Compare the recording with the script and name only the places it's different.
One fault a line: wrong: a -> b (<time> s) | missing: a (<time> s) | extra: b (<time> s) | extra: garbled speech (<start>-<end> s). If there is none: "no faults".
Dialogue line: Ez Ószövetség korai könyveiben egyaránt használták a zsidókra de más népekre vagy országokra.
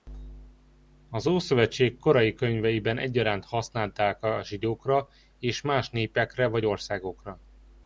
wrong: Ez -> Az (1.1 s)
wrong: de -> és (5.4 s)